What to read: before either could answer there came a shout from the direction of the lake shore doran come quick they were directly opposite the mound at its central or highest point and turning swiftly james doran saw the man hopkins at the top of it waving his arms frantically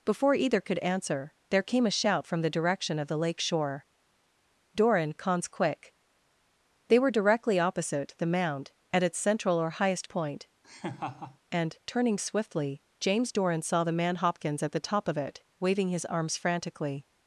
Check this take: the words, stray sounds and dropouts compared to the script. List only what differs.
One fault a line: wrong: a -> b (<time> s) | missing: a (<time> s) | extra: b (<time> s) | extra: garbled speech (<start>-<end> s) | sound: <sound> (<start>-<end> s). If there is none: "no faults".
wrong: come -> cons (5.1 s)
sound: laugh (10.6-11.4 s)